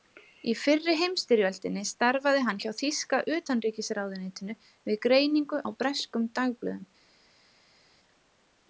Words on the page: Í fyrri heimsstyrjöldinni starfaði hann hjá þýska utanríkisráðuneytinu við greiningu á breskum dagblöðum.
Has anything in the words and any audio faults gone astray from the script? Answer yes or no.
no